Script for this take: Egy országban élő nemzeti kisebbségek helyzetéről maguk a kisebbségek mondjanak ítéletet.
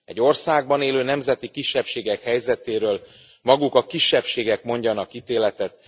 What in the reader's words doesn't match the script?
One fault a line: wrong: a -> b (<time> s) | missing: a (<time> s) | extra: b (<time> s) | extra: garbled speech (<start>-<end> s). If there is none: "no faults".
no faults